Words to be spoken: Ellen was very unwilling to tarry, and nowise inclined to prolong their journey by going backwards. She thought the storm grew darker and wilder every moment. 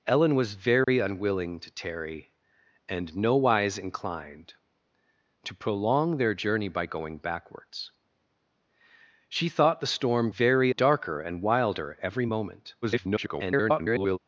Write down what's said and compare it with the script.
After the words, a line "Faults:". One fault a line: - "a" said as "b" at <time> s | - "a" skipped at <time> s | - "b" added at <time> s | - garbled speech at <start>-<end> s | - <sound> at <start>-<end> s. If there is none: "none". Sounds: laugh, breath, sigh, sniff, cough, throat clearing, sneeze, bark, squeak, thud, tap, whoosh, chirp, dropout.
Ellen was very unwilling to tarry, and nowise inclined to prolong their journey by going backwards. She thought the storm very darker and wilder every moment. [garbled]
Faults:
- dropout at 0.8-0.9 s
- "grew" said as "very" at 10.3 s
- garbled speech at 12.8-14.2 s